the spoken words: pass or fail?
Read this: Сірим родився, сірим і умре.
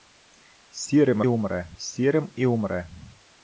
fail